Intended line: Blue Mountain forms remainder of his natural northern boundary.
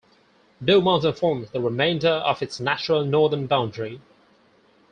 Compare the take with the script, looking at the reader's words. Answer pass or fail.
fail